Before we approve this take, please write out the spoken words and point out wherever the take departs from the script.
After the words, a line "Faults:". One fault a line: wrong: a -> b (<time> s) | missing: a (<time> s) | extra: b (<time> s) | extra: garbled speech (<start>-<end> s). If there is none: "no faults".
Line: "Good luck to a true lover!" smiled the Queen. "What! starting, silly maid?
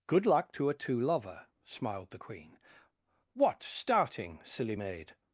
"Good luck to a two lover!" smiled the Queen. "What! starting, silly maid?
Faults:
wrong: true -> two (0.7 s)